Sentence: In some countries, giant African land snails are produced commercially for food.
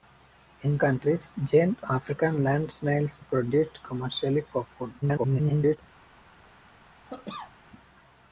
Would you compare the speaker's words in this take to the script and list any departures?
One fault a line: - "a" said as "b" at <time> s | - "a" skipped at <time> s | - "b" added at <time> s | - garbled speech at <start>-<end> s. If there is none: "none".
- "some" skipped at 0.8 s
- "are" skipped at 3.2 s
- garbled speech at 5.0-5.8 s